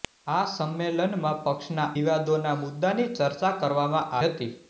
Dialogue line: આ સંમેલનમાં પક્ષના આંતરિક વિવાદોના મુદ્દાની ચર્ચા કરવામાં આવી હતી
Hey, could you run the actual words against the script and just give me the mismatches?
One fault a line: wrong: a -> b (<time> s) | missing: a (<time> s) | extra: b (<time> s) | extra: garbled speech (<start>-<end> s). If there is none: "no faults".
missing: આંતરિક (1.9 s)
missing: આવી (4.2 s)